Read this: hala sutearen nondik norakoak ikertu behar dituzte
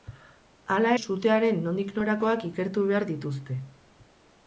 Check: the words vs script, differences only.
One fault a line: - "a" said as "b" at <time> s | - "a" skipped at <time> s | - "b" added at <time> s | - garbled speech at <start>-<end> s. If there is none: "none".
none